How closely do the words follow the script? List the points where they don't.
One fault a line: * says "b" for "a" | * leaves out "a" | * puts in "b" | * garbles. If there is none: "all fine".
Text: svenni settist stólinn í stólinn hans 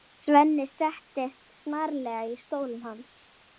* says "snarlega" for "stólinn"